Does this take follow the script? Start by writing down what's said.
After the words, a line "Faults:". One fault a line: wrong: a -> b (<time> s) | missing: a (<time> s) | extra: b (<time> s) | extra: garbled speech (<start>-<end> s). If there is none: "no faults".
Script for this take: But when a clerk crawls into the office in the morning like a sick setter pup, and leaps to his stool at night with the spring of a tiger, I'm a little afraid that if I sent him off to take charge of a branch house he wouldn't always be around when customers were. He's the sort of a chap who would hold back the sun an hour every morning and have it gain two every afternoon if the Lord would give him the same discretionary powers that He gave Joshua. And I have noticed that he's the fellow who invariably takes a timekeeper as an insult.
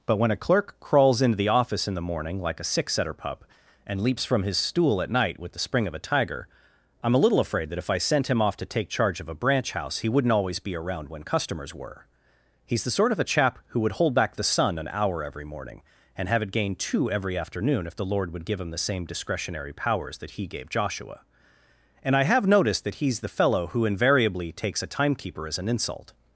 But when a clerk crawls into the office in the morning like a sick setter pup, and leaps from his stool at night with the spring of a tiger, I'm a little afraid that if I sent him off to take charge of a branch house he wouldn't always be around when customers were. He's the sort of a chap who would hold back the sun an hour every morning and have it gain two every afternoon if the Lord would give him the same discretionary powers that He gave Joshua. And I have noticed that he's the fellow who invariably takes a timekeeper as an insult.
Faults:
wrong: to -> from (4.2 s)